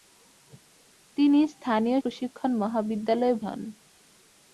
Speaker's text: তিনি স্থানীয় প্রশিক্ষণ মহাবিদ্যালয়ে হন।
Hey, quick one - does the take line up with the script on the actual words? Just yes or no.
yes